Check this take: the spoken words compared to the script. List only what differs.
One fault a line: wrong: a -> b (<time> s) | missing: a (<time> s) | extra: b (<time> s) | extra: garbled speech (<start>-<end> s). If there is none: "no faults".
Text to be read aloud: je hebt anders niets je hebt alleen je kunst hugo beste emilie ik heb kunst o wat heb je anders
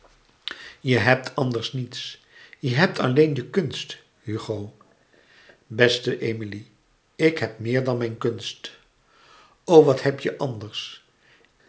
extra: meer dan mijn (7.6 s)